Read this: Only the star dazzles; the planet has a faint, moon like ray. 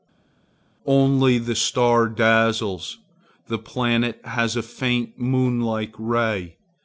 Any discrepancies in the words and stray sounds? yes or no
no